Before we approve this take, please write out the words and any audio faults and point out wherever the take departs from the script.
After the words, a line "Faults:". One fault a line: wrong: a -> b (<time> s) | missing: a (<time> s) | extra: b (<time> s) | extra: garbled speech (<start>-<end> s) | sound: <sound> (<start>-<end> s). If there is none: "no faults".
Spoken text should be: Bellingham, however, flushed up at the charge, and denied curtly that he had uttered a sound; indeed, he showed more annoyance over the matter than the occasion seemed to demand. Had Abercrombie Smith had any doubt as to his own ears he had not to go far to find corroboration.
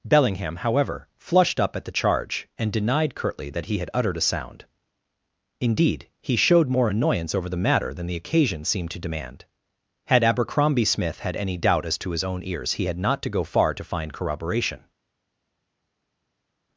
Bellingham, however, flushed up at the charge, and denied curtly that he had uttered a sound; indeed, he showed more annoyance over the matter than the occasion seemed to demand. Had Abercrombie Smith had any doubt as to his own ears he had not to go far to find corroboration.
Faults:
no faults